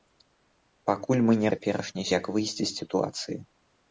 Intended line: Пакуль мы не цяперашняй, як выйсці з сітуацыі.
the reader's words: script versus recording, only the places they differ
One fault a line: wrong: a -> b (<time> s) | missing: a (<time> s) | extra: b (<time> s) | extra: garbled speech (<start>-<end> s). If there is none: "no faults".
no faults